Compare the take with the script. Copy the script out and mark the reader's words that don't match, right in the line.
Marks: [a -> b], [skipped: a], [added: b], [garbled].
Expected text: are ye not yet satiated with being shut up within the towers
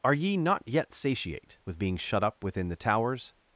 are ye not yet [satiated -> satiate] with being shut up within the towers